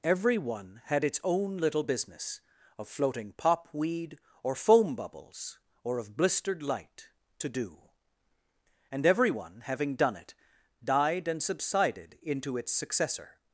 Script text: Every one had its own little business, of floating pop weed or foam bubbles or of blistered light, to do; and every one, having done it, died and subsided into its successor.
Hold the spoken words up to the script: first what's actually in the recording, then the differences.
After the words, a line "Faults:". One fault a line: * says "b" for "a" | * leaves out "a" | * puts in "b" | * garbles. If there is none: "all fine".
Every one had its own little business, of floating pop weed or foam bubbles or of blistered light, to do; and every one, having done it, died and subsided into its successor.
Faults:
all fine